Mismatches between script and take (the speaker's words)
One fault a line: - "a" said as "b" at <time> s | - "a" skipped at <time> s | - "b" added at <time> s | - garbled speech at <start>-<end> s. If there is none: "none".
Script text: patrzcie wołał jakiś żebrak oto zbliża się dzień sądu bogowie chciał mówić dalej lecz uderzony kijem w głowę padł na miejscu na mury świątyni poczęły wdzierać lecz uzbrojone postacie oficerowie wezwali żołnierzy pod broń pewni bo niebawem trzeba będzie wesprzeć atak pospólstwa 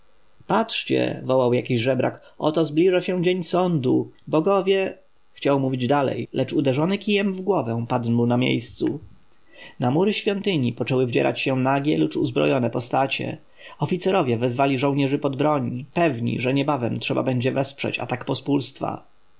- "się nagie" added at 11.4 s
- "bo" said as "że" at 16.4 s